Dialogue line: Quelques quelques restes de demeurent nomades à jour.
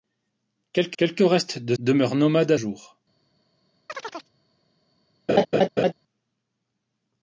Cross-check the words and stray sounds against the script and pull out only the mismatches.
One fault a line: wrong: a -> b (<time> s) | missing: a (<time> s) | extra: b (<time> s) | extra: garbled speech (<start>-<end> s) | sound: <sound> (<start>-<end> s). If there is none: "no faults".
sound: chirp (3.9-4.3 s)
sound: laugh (5.3-5.9 s)